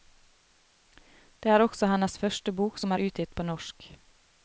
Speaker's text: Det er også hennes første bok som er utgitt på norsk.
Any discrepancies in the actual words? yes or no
no